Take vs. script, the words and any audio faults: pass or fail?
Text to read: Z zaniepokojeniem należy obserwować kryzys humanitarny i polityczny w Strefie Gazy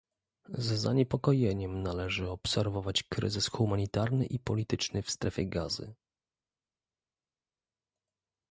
pass